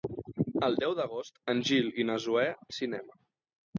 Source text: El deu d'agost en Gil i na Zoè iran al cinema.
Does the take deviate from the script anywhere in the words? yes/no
yes